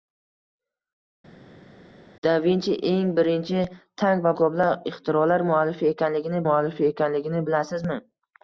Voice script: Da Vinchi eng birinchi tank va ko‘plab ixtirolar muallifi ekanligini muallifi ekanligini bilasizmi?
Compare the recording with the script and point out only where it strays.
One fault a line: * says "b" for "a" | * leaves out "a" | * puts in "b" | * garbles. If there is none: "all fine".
all fine